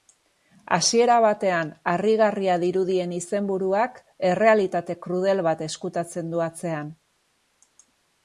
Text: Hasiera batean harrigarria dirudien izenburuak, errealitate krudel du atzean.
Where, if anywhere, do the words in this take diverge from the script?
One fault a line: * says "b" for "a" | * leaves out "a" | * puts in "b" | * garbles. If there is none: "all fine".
* puts in "bat ezkutatzen"